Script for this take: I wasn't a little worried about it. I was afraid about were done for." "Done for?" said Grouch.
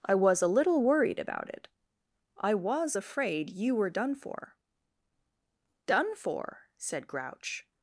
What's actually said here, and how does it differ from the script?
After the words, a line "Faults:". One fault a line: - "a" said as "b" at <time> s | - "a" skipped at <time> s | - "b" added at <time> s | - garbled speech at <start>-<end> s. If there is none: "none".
I was a little worried about it. I was afraid you were done for." "Done for?" said Grouch.
Faults:
- "wasn't" said as "was" at 0.1 s
- "about" said as "you" at 3.5 s